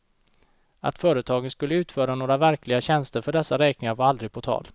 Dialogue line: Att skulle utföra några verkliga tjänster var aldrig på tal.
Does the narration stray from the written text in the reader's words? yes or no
yes